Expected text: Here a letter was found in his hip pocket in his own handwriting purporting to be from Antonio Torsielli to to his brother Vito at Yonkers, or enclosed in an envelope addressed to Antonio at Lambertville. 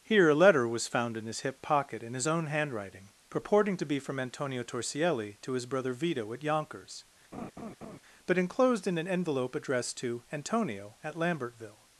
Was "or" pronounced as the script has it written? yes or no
no